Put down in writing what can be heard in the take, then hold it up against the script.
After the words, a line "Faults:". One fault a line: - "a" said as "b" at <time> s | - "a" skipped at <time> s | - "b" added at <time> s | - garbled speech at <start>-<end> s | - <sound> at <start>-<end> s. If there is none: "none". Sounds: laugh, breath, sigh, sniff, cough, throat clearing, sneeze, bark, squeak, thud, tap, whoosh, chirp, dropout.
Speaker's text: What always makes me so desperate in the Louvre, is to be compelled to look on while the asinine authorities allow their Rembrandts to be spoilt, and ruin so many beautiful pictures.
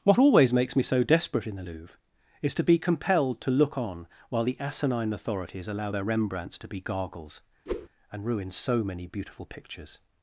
What always makes me so desperate in the Louvre, is to be compelled to look on while the asinine authorities allow their Rembrandts to be gargles, and ruin so many beautiful pictures.
Faults:
- "spoilt" said as "gargles" at 6.8 s
- whoosh at 7.7-7.9 s